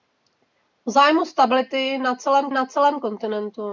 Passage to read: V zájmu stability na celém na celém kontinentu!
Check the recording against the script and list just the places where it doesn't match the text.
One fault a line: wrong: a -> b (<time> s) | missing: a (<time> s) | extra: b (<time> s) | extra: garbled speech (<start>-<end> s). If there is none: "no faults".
no faults